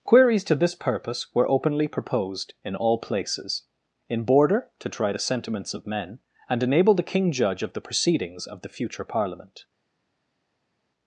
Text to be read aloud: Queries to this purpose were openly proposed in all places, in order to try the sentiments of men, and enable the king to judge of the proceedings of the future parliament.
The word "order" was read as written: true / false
false